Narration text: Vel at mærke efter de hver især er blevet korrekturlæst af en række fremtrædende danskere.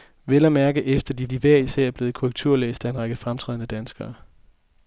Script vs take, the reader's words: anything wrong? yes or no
yes